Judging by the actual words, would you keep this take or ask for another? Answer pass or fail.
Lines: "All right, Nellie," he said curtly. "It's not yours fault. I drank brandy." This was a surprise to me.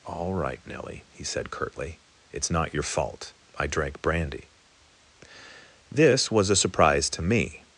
fail